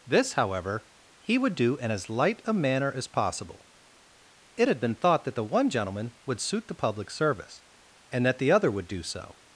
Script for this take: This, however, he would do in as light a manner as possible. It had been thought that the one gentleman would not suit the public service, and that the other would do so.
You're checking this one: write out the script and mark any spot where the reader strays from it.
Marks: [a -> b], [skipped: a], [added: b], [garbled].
This, however, he would do in as light a manner as possible. It had been thought that the one gentleman would [skipped: not] suit the public service, and that the other would do so.